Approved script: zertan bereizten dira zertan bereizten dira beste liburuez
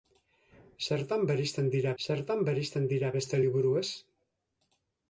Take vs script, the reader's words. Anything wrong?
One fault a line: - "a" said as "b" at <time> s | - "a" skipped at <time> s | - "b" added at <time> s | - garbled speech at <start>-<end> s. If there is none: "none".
none